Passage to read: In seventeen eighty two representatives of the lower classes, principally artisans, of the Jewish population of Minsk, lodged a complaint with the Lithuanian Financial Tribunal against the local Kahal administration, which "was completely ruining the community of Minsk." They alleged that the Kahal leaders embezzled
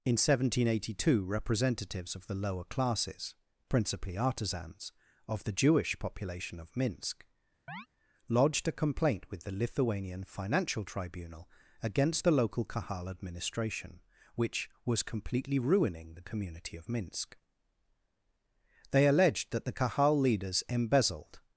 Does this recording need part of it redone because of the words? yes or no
no